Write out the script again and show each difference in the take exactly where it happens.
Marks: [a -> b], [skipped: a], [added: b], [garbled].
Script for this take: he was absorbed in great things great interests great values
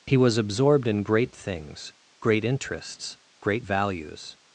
he was absorbed in great things great interests great values